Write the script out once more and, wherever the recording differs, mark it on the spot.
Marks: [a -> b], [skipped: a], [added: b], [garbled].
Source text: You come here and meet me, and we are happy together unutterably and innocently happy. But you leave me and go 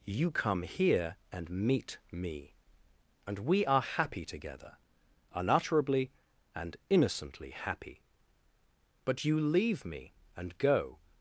You come here and meet me, and we are happy together unutterably and innocently happy. But you leave me and go